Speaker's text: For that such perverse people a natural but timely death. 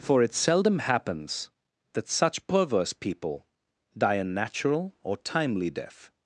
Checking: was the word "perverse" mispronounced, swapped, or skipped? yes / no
no